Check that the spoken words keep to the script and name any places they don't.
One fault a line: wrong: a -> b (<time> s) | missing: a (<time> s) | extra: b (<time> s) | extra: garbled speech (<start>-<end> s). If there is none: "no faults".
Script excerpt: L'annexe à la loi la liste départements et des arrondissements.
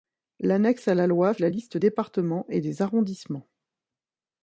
no faults